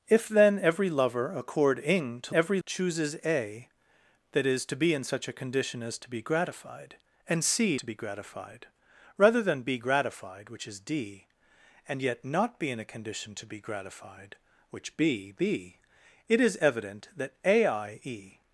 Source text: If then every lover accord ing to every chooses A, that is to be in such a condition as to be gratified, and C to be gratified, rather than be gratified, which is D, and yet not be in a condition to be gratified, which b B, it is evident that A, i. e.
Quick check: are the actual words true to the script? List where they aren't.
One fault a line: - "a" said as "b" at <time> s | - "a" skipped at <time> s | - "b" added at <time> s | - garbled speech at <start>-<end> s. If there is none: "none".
none